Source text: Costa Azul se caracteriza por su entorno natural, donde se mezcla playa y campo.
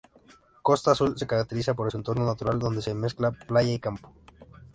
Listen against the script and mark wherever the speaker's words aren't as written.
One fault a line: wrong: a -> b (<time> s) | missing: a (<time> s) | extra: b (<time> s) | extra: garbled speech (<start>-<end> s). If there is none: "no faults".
no faults